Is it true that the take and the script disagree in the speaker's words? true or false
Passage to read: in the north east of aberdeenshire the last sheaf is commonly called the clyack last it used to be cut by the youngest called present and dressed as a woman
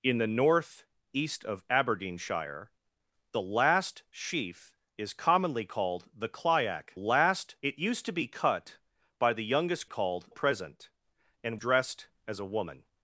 false